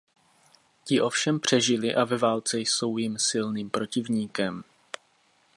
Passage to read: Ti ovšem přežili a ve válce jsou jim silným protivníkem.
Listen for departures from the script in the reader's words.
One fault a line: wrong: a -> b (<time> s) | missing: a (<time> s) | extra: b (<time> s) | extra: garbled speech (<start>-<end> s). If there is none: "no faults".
no faults